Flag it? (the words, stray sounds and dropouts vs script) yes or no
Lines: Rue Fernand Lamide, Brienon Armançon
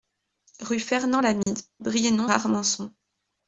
yes